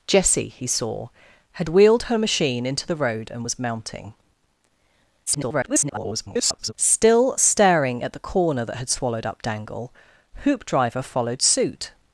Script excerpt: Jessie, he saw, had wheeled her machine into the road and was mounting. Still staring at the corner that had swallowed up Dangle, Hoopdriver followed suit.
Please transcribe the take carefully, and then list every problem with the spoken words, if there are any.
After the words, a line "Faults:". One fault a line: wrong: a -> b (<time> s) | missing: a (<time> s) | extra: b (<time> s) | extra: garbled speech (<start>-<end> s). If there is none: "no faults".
Jessie, he saw, had wheeled her machine into the road and was mounting. [garbled] Still staring at the corner that had swallowed up Dangle, Hoopdriver followed suit.
Faults:
extra: garbled speech (5.3-6.7 s)